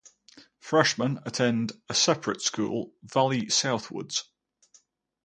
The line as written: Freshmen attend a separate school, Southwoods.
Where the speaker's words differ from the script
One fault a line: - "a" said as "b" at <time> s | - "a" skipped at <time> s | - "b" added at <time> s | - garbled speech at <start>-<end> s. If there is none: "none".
- "Valley" added at 3.0 s